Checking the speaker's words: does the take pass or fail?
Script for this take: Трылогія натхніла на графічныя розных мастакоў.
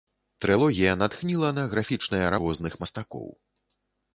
pass